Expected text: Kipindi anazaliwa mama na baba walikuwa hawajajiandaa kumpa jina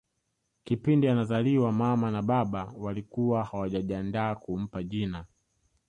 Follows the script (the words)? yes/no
yes